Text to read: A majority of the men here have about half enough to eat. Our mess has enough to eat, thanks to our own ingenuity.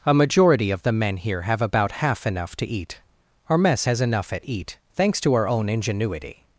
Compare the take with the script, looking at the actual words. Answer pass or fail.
fail